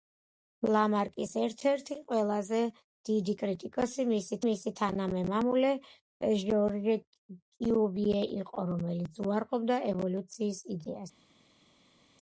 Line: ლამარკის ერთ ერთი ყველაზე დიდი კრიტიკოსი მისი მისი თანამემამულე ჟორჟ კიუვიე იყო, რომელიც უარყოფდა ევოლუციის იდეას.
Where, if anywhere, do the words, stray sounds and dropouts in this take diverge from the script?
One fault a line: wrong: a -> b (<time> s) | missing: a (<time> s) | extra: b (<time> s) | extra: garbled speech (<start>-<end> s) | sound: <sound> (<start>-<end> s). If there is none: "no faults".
no faults